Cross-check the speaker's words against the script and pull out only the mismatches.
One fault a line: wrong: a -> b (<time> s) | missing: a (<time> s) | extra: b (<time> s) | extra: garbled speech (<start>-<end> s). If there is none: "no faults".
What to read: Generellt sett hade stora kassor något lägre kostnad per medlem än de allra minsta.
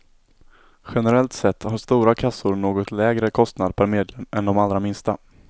wrong: hade -> har (1.6 s)